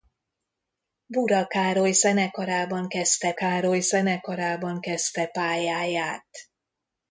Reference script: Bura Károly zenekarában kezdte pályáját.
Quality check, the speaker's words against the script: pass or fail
fail